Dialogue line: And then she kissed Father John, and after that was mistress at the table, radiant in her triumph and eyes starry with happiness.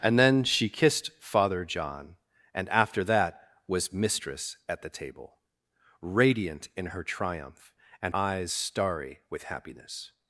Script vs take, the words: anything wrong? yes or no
no